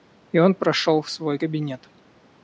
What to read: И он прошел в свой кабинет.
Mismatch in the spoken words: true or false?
false